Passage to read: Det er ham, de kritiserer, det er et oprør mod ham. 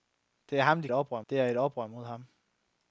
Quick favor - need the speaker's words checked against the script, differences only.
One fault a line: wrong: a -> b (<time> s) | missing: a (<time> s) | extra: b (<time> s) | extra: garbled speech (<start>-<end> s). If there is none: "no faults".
wrong: kritiserer -> oprør (0.9 s)